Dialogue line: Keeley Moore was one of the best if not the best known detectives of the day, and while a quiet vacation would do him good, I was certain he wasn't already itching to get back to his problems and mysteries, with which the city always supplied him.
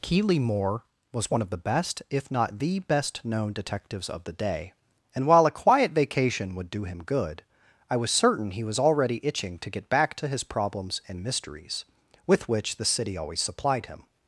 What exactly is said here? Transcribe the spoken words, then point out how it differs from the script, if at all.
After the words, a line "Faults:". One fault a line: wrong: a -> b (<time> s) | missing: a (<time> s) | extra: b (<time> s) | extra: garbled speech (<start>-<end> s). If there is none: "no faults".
Keeley Moore was one of the best if not the best known detectives of the day, and while a quiet vacation would do him good, I was certain he was already itching to get back to his problems and mysteries, with which the city always supplied him.
Faults:
wrong: wasn't -> was (8.6 s)